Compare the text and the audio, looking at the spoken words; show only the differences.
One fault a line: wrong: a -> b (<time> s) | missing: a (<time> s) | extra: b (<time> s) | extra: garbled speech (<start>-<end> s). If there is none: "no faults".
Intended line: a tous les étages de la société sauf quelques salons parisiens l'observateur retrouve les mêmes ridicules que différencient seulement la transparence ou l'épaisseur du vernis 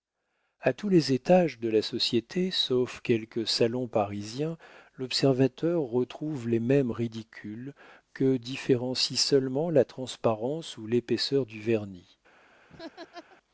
no faults